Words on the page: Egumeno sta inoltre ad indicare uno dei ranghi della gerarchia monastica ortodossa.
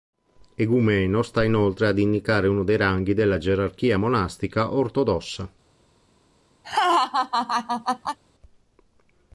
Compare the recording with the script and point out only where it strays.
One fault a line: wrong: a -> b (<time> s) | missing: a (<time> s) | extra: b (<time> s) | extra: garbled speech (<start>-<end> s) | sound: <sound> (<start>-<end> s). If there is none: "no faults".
sound: laugh (6.6-8.2 s)